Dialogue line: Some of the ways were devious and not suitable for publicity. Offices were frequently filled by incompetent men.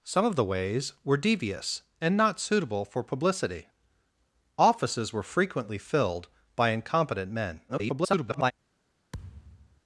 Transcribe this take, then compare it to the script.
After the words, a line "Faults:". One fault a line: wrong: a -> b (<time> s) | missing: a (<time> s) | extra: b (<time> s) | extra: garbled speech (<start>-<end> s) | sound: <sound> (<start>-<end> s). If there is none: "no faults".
Some of the ways were devious and not suitable for publicity. Offices were frequently filled by incompetent men. [garbled]
Faults:
extra: garbled speech (7.7-8.5 s)
sound: thud (9.1-9.8 s)